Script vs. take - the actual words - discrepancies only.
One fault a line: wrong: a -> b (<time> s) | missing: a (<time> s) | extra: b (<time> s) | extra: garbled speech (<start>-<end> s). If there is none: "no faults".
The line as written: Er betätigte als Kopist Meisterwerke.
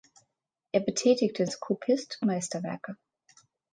no faults